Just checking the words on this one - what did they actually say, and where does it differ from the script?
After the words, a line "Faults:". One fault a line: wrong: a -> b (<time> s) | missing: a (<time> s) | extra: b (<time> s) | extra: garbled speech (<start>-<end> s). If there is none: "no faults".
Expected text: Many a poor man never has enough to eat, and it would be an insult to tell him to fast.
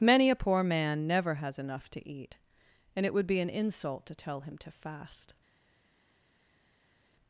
Many a poor man never has enough to eat, and it would be an insult to tell him to fast.
Faults:
no faults